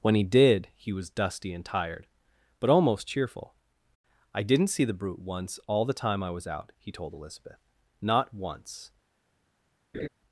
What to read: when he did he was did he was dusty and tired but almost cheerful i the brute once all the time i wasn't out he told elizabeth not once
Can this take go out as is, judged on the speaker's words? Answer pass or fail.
fail